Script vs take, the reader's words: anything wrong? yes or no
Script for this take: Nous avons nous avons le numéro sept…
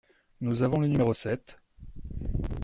yes